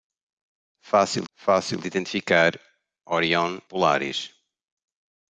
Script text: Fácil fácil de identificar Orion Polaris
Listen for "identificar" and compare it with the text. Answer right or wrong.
right